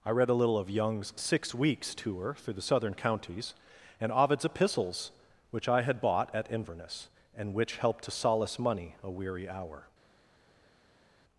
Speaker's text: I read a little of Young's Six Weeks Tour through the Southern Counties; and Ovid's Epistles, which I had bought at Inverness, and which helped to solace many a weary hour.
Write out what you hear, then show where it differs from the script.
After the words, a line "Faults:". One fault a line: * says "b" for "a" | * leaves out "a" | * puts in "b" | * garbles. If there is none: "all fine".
I read a little of Young's Six Weeks Tour through the Southern Counties; and Ovid's Epistles, which I had bought at Inverness, and which helped to solace money a weary hour.
Faults:
* says "money" for "many"